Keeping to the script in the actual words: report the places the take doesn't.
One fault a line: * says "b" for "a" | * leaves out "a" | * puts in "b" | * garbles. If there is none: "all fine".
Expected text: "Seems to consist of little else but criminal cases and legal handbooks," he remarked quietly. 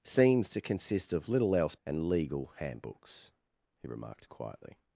* leaves out "but criminal cases"